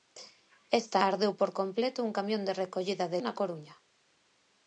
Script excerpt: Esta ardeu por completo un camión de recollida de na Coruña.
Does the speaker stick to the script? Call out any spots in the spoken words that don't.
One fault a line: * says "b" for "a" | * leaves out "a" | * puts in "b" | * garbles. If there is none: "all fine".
all fine